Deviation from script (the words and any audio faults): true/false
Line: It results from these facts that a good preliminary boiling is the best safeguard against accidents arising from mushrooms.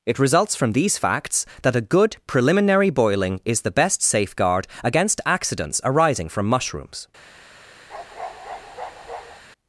true